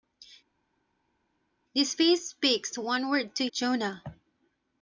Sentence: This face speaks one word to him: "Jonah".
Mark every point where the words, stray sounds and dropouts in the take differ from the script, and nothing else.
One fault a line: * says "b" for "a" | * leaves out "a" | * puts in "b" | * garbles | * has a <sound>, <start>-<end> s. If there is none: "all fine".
* leaves out "him"